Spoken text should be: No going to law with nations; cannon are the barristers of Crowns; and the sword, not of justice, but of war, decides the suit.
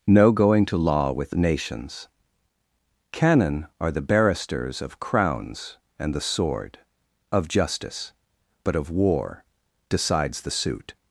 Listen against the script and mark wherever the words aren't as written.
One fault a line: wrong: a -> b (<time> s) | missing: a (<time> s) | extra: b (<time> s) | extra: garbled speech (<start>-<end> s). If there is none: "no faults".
missing: not (6.8 s)